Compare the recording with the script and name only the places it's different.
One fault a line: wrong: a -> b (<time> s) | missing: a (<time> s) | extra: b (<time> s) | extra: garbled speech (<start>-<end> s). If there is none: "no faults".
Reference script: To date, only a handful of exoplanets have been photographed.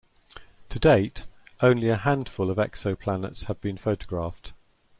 no faults